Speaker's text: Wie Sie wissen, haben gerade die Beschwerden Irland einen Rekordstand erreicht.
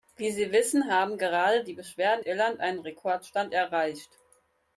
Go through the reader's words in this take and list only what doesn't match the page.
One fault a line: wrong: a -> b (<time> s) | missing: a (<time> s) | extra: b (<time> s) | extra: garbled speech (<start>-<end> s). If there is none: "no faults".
no faults